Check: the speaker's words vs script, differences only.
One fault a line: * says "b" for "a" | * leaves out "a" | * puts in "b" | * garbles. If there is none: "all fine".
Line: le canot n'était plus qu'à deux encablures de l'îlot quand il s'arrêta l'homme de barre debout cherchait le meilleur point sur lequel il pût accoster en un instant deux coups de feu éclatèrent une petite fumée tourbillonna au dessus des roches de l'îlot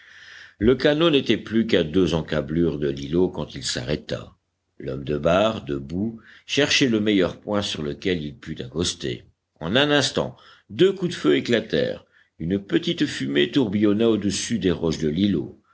all fine